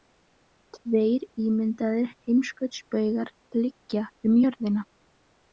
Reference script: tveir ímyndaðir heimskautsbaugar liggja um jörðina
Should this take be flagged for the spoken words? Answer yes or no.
no